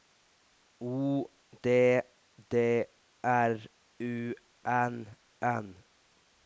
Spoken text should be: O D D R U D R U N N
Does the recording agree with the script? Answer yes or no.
no